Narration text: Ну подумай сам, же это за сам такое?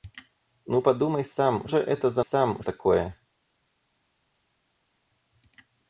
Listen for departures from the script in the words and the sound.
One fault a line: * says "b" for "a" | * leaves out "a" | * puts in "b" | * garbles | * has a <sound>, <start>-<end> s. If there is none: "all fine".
all fine